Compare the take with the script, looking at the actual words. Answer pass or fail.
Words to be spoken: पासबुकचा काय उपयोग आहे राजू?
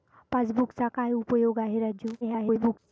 fail